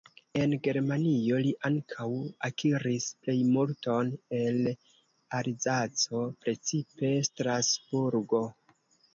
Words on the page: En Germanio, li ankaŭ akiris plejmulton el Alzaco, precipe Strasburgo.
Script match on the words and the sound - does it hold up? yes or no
yes